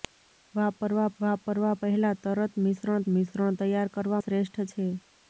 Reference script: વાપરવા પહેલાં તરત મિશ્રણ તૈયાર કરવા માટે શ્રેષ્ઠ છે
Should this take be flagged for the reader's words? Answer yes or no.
yes